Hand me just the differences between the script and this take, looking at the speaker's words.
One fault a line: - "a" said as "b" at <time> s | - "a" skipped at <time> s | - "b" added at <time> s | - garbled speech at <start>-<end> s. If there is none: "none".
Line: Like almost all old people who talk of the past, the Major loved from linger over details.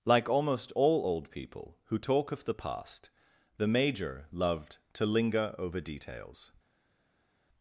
- "from" said as "to" at 4.9 s